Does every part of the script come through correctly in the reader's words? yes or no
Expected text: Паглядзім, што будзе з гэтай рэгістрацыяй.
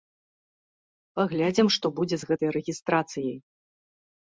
yes